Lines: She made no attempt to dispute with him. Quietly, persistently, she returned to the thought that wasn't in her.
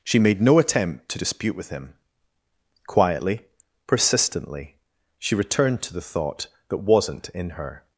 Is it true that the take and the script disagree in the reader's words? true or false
false